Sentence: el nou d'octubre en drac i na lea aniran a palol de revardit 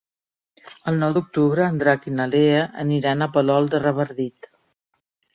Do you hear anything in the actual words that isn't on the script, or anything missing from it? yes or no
no